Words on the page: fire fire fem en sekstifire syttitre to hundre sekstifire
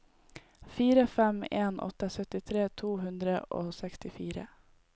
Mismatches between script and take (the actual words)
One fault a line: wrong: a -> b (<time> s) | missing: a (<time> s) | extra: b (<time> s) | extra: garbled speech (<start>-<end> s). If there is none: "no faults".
missing: fire (1.1 s)
wrong: sekstifire -> åtte (1.8 s)
extra: og (3.6 s)